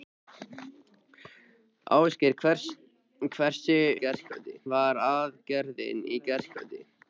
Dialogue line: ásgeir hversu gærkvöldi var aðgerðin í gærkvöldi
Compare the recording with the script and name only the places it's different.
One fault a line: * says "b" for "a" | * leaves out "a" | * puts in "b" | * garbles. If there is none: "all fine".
all fine